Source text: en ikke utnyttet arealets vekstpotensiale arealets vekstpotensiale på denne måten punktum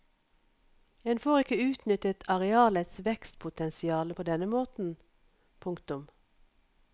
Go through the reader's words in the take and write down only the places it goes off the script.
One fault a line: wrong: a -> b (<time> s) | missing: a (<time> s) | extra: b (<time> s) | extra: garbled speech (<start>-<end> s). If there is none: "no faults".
extra: får (1.2 s)
missing: arealets vekstpotensiale (4.1 s)